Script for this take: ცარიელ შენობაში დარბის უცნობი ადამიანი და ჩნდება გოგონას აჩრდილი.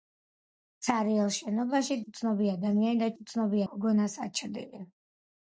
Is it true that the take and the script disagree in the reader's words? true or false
true